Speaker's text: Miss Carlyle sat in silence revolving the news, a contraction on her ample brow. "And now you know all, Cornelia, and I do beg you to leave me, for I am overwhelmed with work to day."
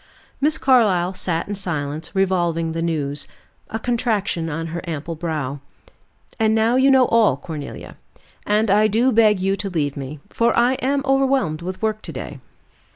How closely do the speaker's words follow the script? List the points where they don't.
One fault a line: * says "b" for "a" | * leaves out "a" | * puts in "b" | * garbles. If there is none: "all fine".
all fine